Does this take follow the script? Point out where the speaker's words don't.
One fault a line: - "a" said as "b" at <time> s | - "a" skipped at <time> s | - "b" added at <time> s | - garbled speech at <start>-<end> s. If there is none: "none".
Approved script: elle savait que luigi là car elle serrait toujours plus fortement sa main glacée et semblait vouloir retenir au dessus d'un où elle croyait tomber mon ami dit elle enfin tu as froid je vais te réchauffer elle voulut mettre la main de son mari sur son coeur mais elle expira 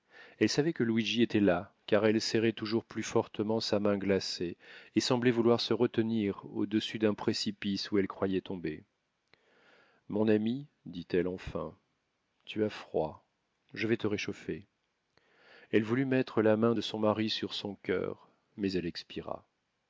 - "était" added at 1.2 s
- "se" added at 5.6 s
- "précipice" added at 7.1 s